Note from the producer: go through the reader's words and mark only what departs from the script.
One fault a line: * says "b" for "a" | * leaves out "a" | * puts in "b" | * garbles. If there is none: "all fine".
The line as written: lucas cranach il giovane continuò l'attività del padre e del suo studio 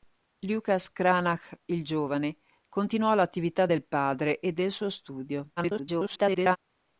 * garbles